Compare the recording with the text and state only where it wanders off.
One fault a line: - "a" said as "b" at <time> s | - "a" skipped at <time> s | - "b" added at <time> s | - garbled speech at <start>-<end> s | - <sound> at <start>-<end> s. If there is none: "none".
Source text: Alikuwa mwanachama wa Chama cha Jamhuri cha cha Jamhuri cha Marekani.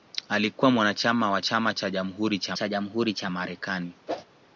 - whoosh at 4.1-4.2 s